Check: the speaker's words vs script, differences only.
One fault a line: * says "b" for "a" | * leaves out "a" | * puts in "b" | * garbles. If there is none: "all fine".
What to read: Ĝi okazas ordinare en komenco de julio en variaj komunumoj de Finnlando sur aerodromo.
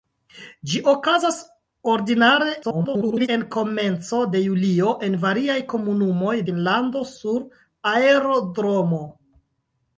* garbles
* leaves out "de"